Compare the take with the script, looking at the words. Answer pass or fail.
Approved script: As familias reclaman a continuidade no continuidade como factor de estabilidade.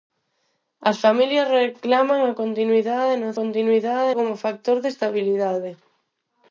pass